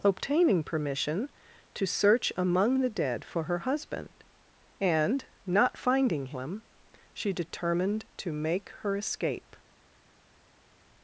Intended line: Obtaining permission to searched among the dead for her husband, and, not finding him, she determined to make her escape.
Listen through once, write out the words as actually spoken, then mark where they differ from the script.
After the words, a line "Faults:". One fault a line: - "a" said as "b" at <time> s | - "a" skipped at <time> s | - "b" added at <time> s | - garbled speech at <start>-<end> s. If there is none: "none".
Obtaining permission to search among the dead for her husband, and, not finding him, she determined to make her escape.
Faults:
- "searched" said as "search" at 1.9 s